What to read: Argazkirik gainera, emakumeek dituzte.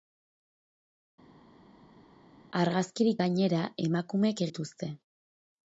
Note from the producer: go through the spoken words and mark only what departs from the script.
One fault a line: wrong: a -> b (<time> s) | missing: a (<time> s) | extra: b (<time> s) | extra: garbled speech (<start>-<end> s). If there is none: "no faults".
no faults